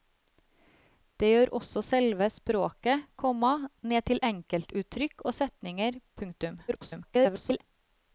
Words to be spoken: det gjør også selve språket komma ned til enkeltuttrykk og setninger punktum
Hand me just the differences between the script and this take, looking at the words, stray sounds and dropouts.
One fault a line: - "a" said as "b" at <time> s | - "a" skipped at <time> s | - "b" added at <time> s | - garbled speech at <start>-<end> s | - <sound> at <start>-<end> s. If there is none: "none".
- garbled speech at 6.7-7.6 s